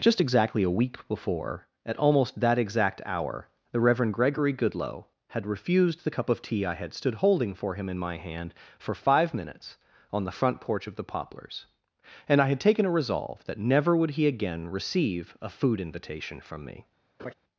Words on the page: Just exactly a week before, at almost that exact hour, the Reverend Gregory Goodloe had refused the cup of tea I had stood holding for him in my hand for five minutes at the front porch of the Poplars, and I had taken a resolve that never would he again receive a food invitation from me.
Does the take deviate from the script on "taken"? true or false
false